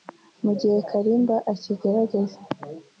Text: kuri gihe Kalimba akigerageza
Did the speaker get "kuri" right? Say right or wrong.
wrong